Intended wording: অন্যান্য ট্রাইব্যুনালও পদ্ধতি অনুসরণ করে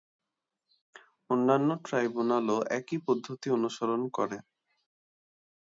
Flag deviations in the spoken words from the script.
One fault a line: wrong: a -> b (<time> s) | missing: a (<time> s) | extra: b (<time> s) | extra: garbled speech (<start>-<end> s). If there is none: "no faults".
extra: একই (2.7 s)